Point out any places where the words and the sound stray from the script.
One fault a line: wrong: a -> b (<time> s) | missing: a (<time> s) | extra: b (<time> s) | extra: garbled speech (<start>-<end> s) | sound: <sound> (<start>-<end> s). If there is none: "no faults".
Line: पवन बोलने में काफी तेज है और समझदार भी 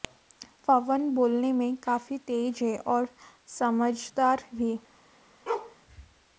sound: bark (5.5-5.8 s)